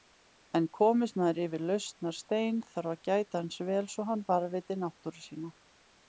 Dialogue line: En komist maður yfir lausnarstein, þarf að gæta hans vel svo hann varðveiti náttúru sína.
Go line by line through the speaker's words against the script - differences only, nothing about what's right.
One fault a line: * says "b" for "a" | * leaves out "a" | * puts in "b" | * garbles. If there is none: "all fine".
all fine